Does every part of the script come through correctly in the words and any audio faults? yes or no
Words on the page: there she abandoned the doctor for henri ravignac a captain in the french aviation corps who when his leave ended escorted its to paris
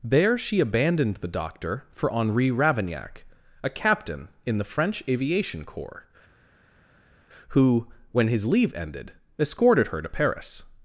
no